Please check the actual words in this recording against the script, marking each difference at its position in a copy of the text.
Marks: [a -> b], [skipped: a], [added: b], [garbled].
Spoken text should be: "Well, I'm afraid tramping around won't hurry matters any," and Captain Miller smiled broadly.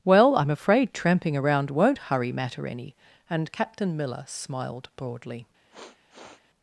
"Well, I'm afraid tramping around won't hurry [matters -> matter] any," and Captain Miller smiled broadly.